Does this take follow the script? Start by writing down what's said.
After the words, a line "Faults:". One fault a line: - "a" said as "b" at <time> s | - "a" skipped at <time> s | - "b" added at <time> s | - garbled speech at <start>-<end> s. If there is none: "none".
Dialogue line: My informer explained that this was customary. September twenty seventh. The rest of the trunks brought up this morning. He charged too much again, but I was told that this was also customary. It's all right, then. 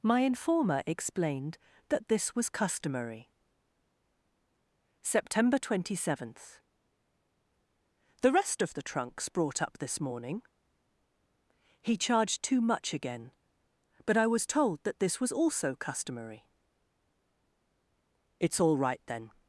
My informer explained that this was customary. September twenty seventh. The rest of the trunks brought up this morning. He charged too much again, but I was told that this was also customary. It's all right, then.
Faults:
none